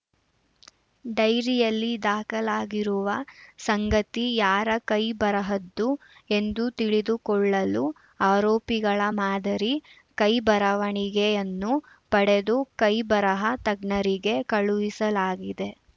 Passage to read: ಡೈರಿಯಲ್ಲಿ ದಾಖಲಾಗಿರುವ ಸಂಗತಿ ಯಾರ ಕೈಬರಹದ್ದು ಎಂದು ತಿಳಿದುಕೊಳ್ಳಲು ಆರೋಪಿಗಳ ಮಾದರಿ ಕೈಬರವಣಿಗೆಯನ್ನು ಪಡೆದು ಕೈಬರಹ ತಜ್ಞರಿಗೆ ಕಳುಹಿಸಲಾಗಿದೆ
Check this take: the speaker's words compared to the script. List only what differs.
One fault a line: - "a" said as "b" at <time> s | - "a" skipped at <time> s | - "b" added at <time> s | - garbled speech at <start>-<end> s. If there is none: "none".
none